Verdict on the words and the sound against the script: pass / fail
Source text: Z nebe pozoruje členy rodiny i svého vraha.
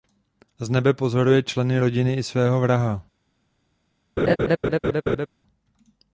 fail